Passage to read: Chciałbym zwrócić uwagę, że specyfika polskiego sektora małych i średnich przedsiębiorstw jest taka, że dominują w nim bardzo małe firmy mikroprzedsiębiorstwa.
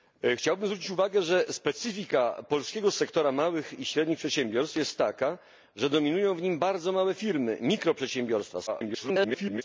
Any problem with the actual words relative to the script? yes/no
yes